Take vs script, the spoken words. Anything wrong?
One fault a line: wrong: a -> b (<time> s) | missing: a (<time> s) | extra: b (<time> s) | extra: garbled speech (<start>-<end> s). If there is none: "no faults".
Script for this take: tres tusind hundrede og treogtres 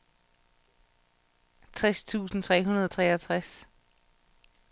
extra: tre (2.4 s)